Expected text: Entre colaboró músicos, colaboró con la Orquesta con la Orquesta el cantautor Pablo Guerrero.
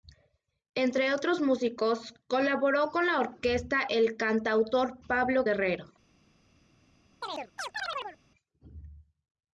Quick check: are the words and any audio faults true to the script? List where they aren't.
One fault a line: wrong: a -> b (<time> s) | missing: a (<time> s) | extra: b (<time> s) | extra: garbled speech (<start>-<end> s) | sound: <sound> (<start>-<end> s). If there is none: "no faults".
wrong: colaboró -> otros (1.1 s)
missing: con la Orquesta (3.8 s)
sound: chirp (7.2-8.2 s)